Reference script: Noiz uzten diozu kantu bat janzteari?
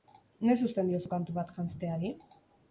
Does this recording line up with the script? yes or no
yes